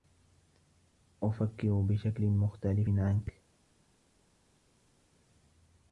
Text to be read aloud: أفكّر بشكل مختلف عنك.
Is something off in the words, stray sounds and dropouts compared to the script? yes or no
no